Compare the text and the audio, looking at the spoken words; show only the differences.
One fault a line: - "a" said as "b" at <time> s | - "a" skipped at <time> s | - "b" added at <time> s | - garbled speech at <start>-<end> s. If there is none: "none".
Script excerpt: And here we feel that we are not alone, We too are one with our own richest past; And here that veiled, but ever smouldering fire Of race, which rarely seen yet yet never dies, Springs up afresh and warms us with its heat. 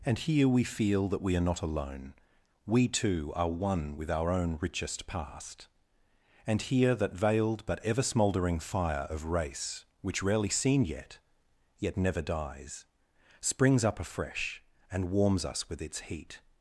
none